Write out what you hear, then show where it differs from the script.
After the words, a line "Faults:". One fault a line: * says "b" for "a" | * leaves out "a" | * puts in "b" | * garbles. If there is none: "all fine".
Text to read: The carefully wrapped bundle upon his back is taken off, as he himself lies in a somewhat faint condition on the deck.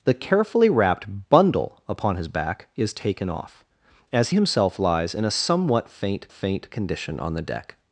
The carefully wrapped bundle upon his back is taken off, as himself lies in a somewhat faint faint condition on the deck.
Faults:
* leaves out "he"
* puts in "faint"